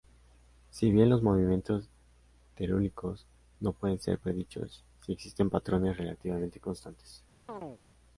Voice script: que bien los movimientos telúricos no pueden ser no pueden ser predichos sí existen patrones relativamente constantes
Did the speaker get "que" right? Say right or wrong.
wrong